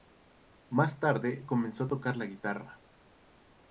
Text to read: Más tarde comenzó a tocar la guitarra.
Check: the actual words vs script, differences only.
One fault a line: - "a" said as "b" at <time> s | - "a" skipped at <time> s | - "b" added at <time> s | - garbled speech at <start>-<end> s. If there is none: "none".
none